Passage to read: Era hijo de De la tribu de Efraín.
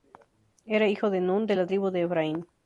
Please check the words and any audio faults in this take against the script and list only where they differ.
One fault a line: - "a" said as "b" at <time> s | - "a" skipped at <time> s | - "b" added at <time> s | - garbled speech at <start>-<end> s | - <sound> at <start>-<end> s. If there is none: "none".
- "Nun" added at 1.2 s